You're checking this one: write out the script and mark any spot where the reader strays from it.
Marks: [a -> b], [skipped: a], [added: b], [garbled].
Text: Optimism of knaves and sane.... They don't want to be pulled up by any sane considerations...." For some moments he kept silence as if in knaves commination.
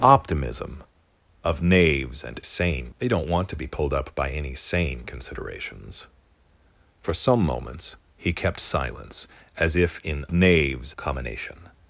Optimism of knaves and sane.... They don't want to be pulled up by any sane considerations...." For some moments he kept silence as if in knaves commination.